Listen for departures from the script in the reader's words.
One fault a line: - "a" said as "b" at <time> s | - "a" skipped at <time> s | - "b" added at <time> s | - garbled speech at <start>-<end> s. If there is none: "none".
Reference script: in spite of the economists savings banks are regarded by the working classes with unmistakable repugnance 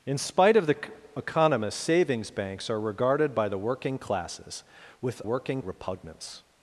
- "unmistakable" said as "working" at 5.2 s